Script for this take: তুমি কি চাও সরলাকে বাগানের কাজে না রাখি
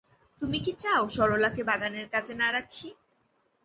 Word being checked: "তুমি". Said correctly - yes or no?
yes